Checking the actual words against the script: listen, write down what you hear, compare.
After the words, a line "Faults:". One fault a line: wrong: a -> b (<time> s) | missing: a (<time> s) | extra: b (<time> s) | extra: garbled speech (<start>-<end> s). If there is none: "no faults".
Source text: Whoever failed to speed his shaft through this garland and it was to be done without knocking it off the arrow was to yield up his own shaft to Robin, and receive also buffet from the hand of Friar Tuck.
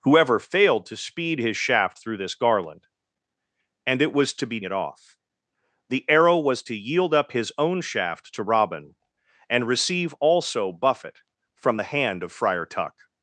Whoever failed to speed his shaft through this garland and it was to be it off the arrow was to yield up his own shaft to Robin, and receive also buffet from the hand of Friar Tuck.
Faults:
missing: done without knocking (4.6 s)